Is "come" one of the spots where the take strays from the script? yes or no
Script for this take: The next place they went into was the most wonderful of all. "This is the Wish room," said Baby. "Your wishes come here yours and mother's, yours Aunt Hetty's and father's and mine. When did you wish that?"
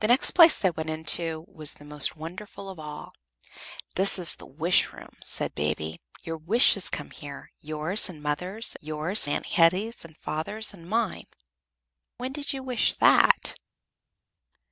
no